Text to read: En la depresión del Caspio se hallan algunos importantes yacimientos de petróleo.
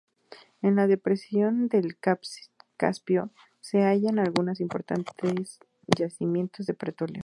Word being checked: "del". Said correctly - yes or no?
yes